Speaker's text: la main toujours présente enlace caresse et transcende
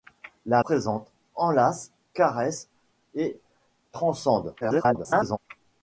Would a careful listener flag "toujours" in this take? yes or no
yes